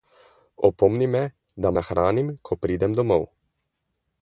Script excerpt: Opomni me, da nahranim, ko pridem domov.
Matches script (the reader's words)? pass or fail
pass